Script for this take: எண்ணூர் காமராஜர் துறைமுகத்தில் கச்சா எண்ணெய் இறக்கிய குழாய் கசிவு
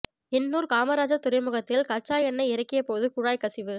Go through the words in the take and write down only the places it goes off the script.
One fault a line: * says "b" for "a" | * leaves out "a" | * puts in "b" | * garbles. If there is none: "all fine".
* puts in "போது"